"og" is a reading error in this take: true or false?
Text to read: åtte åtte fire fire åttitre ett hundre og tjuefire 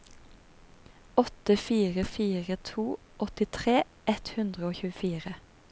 false